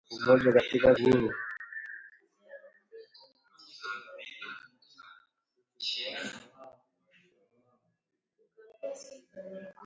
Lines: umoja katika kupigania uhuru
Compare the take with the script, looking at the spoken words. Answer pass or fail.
fail